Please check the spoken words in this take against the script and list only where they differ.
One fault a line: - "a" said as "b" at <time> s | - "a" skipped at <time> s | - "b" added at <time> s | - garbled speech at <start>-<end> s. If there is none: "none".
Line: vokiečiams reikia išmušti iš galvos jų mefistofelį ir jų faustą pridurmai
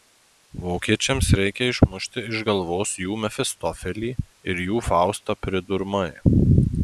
none